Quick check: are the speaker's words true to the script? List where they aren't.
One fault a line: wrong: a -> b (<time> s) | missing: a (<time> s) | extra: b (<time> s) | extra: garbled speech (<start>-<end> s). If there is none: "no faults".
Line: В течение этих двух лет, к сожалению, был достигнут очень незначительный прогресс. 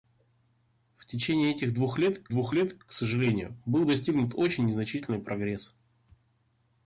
extra: двух лет (2.3 s)